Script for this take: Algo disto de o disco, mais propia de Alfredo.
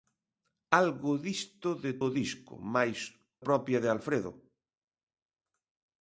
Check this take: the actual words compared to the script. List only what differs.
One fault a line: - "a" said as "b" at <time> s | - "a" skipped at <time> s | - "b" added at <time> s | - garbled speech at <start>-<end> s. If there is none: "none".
none